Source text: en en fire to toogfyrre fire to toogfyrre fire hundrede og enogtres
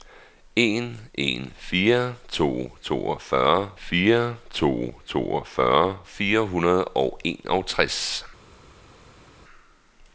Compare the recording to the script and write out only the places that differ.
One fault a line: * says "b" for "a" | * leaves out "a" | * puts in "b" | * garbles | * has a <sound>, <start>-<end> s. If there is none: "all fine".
all fine